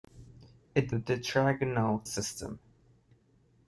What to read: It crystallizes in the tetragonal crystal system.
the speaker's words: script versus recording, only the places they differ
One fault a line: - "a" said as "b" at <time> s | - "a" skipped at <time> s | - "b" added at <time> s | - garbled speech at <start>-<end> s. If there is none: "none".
- "crystallizes in" skipped at 1.0 s
- "crystal" skipped at 2.0 s